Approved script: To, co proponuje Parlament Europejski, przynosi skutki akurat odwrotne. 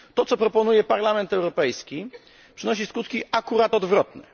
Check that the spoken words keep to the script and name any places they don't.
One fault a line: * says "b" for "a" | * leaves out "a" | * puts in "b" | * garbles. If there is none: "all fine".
all fine